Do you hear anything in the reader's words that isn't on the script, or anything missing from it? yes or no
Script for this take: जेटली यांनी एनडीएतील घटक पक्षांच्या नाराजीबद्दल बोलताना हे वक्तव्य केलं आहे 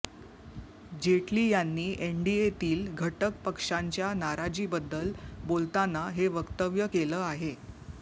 no